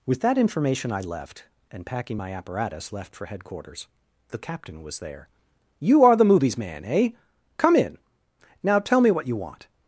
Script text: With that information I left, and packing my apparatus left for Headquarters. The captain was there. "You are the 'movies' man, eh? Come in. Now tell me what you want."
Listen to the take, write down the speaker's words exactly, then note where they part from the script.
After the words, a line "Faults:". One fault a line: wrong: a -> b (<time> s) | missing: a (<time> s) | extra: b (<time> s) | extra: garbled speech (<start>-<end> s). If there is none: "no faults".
With that information I left, and packing my apparatus left for Headquarters. The captain was there. "You are the 'movies' man, eh? Come in. Now tell me what you want."
Faults:
no faults